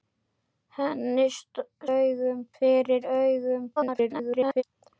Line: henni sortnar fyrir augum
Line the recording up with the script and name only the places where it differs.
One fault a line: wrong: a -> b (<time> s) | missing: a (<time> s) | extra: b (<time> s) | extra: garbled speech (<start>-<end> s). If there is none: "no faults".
wrong: sortnar -> augum (2.0 s)
extra: garbled speech (3.8-4.6 s)